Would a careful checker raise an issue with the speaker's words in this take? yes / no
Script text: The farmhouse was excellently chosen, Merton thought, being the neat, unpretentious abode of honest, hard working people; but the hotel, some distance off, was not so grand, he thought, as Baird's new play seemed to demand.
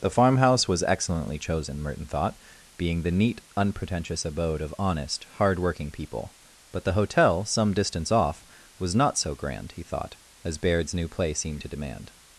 no